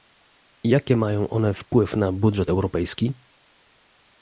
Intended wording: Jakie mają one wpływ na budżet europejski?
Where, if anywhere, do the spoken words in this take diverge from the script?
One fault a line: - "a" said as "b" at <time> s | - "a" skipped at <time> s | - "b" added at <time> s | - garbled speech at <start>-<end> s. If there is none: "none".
none